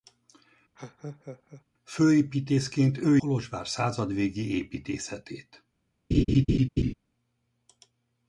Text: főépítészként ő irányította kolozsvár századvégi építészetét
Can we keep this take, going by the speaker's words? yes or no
no